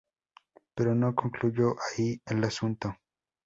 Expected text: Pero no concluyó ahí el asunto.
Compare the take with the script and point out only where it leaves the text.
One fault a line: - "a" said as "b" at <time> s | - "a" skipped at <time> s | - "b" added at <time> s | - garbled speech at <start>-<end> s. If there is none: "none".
none